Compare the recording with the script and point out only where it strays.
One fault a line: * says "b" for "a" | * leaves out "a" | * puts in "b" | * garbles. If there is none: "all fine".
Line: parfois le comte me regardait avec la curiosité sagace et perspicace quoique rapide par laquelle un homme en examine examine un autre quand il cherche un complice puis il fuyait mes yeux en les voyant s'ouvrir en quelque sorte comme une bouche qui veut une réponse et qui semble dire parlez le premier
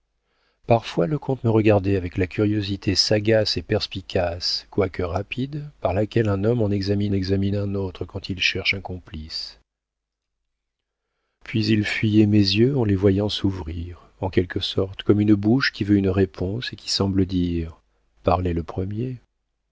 all fine